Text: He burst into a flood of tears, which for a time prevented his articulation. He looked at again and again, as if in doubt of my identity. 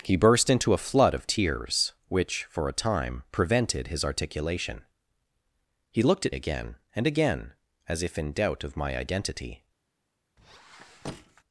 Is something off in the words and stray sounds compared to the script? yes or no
yes